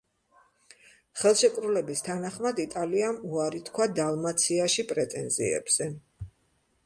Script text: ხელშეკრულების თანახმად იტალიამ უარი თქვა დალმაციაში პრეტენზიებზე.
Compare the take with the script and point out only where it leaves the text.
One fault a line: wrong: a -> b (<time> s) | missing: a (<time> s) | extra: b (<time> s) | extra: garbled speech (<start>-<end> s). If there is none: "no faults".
no faults